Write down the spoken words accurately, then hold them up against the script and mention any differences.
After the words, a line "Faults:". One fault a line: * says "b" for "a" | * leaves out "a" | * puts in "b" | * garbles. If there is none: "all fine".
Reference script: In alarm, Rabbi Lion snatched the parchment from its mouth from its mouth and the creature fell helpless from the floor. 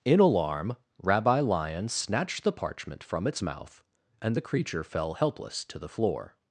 In alarm, Rabbi Lion snatched the parchment from its mouth and the creature fell helpless to the floor.
Faults:
* leaves out "from its mouth"
* says "to" for "from"